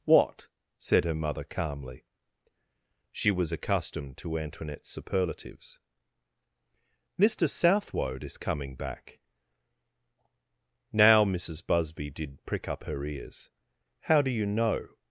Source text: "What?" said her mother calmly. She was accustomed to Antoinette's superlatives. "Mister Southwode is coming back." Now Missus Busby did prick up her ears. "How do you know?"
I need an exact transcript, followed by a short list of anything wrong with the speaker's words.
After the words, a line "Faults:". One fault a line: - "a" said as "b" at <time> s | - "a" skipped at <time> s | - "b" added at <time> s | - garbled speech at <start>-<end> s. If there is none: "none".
"What?" said her mother calmly. She was accustomed to Antoinette's superlatives. "Mister Southwode is coming back." Now Missus Busby did prick up her ears. "How do you know?"
Faults:
none